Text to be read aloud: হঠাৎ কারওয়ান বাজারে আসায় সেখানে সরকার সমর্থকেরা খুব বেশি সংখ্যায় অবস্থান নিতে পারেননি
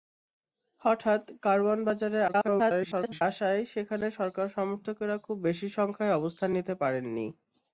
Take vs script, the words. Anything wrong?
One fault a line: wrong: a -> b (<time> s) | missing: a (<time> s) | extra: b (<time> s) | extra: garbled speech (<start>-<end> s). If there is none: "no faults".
extra: garbled speech (2.3-3.2 s)